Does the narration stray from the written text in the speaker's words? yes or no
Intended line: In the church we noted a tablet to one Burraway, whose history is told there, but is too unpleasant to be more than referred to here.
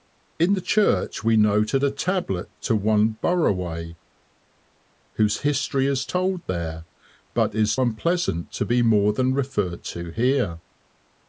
yes